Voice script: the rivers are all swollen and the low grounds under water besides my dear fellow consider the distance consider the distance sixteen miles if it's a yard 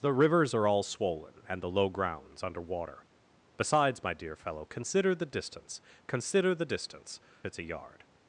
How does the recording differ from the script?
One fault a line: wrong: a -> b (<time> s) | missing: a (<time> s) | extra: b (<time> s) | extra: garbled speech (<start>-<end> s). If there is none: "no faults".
missing: sixteen miles if (7.2 s)